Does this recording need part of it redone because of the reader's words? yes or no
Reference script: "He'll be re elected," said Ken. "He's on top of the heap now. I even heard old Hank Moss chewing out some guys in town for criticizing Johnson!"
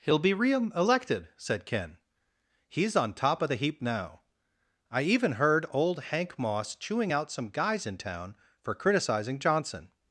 no